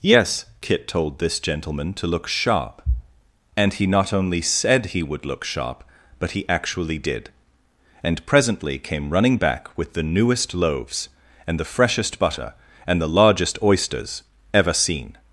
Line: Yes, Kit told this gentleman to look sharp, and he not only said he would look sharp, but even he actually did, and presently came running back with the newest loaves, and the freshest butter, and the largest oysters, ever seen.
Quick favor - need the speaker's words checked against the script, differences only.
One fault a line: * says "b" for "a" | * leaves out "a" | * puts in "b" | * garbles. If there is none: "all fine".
* leaves out "even"